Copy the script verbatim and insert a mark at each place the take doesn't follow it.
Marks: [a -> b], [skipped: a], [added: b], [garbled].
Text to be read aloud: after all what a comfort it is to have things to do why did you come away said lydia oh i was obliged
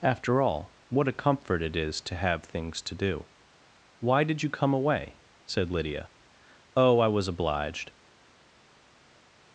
after all what a comfort it is to have things to do why did you come away said lydia oh i was obliged